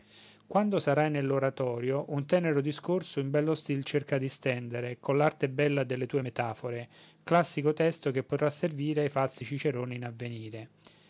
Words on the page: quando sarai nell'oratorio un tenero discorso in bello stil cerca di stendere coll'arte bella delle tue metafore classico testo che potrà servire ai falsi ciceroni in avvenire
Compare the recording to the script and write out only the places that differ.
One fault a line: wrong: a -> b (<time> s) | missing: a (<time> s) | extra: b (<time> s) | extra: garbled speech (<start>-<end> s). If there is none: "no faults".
no faults